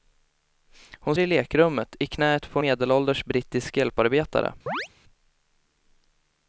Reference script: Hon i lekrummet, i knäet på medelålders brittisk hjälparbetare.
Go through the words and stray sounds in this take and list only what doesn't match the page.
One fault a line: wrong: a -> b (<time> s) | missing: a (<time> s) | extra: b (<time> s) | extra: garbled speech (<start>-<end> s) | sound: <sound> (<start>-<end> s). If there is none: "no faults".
sound: chirp (4.7-4.9 s)